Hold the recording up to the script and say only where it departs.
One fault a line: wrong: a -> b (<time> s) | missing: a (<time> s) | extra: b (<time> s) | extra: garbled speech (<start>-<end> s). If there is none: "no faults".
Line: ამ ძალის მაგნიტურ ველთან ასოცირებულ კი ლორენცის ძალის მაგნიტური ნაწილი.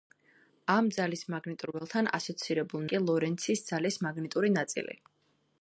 no faults